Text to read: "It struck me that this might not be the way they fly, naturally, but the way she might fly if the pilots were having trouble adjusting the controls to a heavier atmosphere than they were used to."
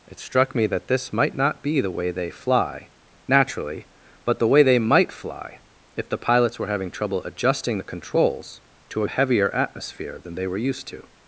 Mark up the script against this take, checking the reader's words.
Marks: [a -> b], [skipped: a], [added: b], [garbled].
"It struck me that this might not be the way they fly, naturally, but the way [she -> they] might fly if the pilots were having trouble adjusting the controls to a heavier atmosphere than they were used to."